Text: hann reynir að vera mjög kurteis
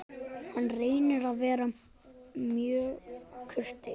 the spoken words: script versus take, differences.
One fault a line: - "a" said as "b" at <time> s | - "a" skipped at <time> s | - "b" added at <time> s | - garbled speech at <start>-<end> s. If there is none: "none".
none